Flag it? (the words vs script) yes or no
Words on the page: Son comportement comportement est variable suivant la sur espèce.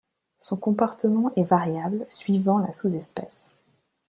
yes